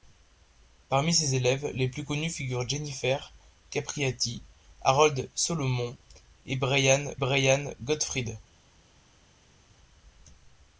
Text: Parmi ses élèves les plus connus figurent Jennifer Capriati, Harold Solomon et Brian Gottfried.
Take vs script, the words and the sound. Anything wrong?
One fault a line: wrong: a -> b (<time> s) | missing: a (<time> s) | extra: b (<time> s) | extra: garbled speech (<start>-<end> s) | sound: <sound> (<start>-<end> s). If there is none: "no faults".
extra: Brian (7.1 s)